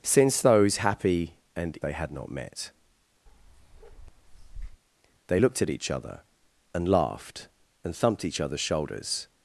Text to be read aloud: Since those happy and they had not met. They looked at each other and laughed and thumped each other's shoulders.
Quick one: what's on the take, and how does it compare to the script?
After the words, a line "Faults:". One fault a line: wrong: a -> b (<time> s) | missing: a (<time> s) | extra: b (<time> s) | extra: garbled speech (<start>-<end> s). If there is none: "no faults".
Since those happy and they had not met. They looked at each other and laughed and thumped each other's shoulders.
Faults:
no faults